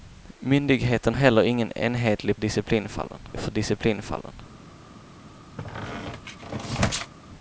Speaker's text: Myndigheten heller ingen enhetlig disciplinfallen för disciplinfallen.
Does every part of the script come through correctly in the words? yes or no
yes